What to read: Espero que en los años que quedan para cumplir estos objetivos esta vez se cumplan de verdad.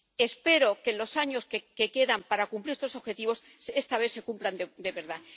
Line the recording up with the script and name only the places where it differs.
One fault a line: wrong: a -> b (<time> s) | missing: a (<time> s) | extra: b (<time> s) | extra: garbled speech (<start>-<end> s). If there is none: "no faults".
no faults